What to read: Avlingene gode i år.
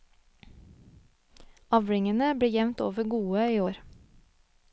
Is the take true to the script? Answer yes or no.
no